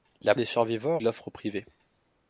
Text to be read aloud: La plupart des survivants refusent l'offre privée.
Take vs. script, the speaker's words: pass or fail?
fail